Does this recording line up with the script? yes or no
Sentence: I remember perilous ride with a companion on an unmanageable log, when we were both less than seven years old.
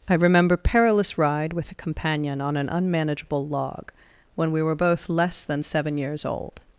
yes